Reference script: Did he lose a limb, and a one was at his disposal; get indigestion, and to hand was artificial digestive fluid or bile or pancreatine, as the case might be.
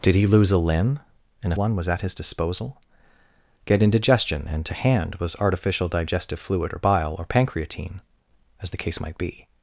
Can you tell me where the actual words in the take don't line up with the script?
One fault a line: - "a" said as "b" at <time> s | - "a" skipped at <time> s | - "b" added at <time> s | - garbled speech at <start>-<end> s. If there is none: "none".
none